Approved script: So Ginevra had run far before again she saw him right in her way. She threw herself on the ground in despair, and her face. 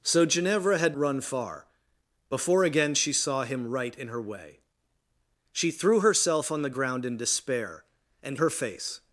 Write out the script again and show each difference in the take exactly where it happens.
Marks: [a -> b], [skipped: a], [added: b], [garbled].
So Ginevra had run far before again she saw him right in her way. She threw herself on the ground in despair, and her face.